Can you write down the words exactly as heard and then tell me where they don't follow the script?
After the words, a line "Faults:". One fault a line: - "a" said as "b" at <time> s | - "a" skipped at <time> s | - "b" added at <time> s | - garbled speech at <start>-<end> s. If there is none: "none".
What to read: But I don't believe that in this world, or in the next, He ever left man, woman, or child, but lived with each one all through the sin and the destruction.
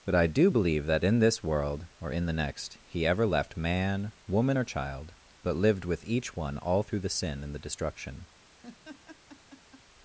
But I do believe that in this world, or in the next, He ever left man, woman, or child, but lived with each one all through the sin and the destruction.
Faults:
- "don't" said as "do" at 0.3 s